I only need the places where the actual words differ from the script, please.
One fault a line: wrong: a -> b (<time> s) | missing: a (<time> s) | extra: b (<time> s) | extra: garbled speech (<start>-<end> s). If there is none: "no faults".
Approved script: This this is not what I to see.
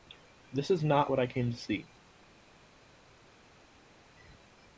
missing: this (0.7 s)
extra: came (1.3 s)